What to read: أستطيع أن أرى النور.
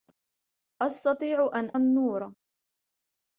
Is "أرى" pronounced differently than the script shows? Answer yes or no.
yes